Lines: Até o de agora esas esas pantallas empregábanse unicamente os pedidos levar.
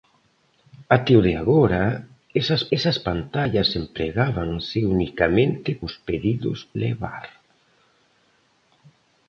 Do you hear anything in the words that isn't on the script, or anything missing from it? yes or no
no